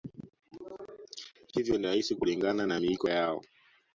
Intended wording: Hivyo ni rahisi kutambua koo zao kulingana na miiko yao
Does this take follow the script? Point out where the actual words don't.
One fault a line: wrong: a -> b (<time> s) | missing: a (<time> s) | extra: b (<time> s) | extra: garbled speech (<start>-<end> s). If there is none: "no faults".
missing: kutambua koo zao (2.1 s)